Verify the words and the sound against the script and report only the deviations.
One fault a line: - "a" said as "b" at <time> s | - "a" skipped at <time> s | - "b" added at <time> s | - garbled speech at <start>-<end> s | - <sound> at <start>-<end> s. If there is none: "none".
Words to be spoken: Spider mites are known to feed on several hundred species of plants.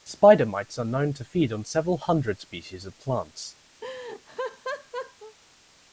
- laugh at 3.8-5.4 s